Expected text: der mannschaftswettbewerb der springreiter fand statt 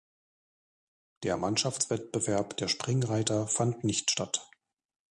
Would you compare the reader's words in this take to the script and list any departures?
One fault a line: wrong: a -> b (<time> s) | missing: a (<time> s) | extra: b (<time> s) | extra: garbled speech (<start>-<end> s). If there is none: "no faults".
extra: nicht (3.8 s)